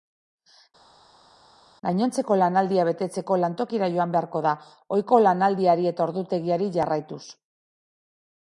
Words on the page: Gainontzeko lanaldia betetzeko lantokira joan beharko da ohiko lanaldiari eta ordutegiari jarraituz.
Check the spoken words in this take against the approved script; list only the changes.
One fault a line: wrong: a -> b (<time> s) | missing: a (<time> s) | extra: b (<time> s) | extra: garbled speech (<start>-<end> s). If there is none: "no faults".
no faults